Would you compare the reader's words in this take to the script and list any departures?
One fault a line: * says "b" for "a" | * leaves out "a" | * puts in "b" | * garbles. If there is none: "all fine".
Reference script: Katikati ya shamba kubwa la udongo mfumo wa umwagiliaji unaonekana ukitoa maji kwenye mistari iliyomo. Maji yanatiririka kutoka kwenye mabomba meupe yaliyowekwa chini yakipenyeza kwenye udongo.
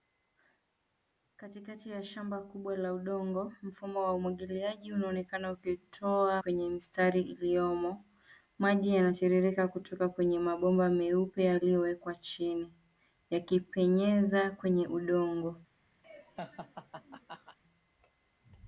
* leaves out "maji"